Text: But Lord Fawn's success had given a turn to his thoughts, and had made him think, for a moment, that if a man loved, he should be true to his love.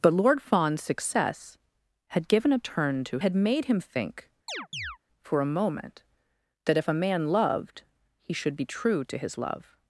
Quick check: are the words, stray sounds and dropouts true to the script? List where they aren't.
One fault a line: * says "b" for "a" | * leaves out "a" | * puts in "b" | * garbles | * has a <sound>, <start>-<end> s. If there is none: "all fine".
* leaves out "his thoughts and"
* has a chirp, 4.5-5.0 s